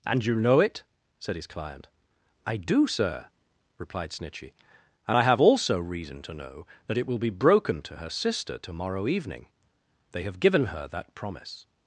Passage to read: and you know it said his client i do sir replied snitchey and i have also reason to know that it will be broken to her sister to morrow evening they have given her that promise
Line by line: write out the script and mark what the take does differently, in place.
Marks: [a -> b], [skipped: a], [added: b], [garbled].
and you know it said his client i do sir replied snitchey and i have also reason to know that it will be broken to her sister to morrow evening they have given her that promise